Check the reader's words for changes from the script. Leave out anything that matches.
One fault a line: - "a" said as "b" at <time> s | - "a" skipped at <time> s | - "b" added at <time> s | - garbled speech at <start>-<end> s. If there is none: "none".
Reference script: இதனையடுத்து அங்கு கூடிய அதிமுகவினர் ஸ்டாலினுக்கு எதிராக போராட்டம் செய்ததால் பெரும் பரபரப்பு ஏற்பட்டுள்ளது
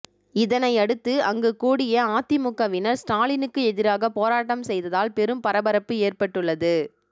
none